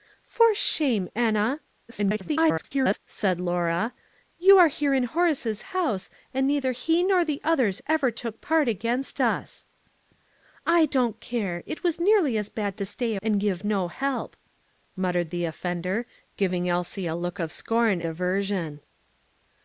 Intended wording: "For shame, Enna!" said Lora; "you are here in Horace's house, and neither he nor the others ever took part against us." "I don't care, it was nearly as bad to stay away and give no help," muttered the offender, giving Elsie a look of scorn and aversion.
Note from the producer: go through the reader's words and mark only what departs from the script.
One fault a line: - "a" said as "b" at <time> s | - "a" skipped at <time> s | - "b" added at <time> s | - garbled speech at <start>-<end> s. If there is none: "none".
- garbled speech at 1.9-3.0 s
- "away" skipped at 13.2 s
- "and" skipped at 18.0 s